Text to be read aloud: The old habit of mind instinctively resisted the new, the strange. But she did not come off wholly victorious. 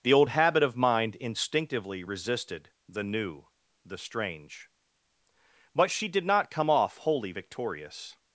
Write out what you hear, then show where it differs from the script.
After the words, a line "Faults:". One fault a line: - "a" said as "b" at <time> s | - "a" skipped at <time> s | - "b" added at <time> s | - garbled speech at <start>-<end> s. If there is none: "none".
The old habit of mind instinctively resisted the new, the strange. But she did not come off wholly victorious.
Faults:
none